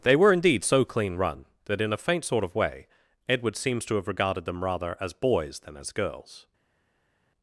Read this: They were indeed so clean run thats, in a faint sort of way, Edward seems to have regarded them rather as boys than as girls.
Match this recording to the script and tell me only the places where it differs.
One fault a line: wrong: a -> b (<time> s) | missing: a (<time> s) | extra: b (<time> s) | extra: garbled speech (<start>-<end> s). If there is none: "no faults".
wrong: thats -> that (1.6 s)